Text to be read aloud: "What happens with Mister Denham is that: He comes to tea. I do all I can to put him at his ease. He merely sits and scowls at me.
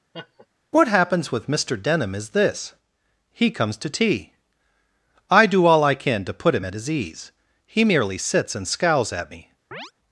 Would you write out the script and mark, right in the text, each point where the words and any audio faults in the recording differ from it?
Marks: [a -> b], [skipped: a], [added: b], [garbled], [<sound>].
[laugh] "What happens with Mister Denham is [that: -> this] He comes to tea. I do all I can to put him at his ease. He merely sits and scowls at me. [chirp]